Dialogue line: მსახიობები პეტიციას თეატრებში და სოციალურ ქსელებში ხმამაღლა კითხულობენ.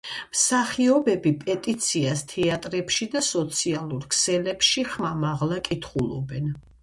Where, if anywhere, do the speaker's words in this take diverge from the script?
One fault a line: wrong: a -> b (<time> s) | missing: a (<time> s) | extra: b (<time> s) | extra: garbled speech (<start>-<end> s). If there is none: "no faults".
no faults